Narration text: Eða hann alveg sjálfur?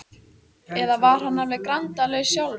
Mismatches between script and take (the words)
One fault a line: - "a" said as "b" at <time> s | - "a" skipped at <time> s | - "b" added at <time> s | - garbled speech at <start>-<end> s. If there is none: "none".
- "var" added at 1.0 s
- "grandalaus" added at 1.7 s